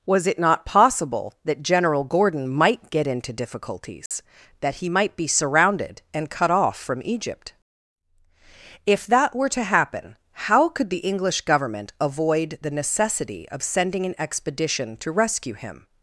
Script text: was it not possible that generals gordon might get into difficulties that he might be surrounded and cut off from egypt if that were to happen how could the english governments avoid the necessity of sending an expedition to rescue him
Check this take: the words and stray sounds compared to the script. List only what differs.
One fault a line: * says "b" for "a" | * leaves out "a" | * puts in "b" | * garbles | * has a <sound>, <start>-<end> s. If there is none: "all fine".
* says "general" for "generals"
* has a dropout, 4.1-4.1 s
* says "government" for "governments"